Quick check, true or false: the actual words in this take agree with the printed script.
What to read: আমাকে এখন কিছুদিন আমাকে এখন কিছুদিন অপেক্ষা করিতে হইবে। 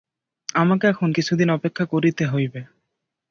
false